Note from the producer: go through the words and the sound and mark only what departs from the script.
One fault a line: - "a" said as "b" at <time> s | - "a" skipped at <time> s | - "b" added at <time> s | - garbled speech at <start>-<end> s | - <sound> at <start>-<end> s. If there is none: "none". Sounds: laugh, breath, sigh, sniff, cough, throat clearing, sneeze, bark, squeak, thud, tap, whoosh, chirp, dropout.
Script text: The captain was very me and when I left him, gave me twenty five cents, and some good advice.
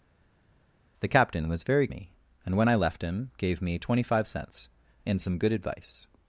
none